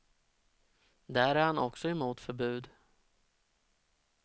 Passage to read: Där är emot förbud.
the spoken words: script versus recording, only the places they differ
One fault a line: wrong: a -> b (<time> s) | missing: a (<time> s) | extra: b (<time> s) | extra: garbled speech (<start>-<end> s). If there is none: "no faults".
extra: han också (1.4 s)